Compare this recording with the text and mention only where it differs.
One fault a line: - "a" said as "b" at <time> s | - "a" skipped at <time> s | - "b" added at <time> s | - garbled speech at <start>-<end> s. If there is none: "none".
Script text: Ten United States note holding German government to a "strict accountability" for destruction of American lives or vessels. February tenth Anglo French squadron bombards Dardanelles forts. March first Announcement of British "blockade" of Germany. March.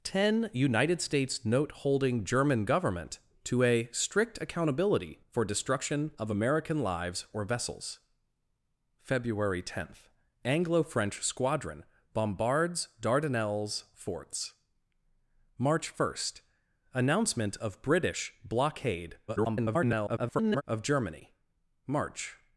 - garbled speech at 19.3-20.6 s